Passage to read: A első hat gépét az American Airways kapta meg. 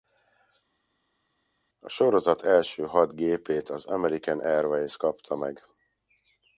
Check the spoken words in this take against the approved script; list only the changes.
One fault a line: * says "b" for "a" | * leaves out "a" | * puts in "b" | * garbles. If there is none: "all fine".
* puts in "sorozat"